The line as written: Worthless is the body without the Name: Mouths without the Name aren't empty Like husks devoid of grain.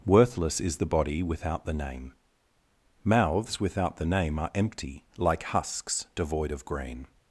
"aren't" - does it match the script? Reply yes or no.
no